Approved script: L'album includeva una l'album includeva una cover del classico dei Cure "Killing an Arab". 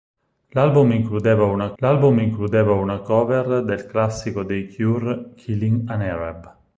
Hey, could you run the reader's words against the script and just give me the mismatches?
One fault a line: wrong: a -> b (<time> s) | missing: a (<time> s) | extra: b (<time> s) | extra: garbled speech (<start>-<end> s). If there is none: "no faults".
no faults